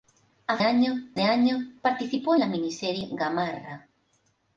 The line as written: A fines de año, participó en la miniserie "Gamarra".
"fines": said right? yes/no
no